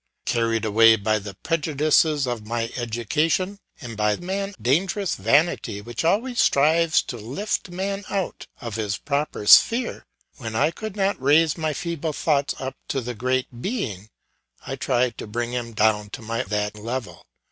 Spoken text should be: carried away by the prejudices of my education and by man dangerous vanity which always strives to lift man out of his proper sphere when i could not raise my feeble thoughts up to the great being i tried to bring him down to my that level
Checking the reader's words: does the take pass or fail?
pass